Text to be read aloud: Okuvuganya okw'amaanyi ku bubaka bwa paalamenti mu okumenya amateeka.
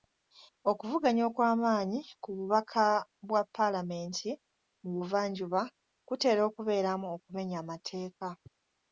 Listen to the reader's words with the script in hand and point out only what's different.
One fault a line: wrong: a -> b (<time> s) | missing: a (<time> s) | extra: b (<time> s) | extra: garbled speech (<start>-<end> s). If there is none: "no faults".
extra: buvanjuba kutera okubeeramu (5.0 s)